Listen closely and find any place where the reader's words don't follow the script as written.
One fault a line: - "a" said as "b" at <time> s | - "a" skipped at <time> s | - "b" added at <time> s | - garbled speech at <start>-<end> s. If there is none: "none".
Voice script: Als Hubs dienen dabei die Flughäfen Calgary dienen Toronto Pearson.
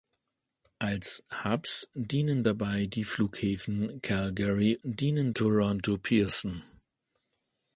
none